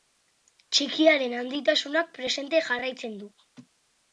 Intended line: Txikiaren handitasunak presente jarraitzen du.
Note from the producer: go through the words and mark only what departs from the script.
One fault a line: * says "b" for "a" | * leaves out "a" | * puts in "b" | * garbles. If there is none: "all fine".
all fine